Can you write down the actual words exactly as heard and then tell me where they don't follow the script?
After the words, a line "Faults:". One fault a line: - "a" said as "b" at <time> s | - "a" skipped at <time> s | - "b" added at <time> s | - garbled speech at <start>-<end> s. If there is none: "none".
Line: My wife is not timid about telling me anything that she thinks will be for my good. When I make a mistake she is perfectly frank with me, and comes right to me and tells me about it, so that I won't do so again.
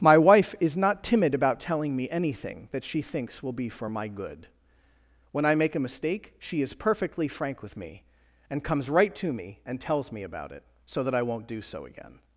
My wife is not timid about telling me anything that she thinks will be for my good. When I make a mistake she is perfectly frank with me, and comes right to me and tells me about it, so that I won't do so again.
Faults:
none